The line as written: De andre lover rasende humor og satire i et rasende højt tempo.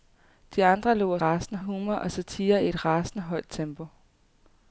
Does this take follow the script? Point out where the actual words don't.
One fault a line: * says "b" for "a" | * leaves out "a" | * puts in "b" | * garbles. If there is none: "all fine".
all fine